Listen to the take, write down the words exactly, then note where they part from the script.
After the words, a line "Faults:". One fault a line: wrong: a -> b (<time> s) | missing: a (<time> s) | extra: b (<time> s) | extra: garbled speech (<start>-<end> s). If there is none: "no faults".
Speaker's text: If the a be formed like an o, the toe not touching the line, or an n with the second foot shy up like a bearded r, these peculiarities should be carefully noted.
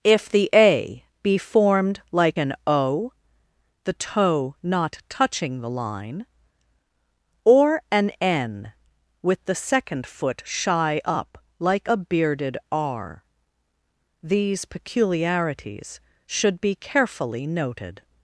If the a be formed like an o, the toe not touching the line, or an n with the second foot shy up like a bearded r, these peculiarities should be carefully noted.
Faults:
no faults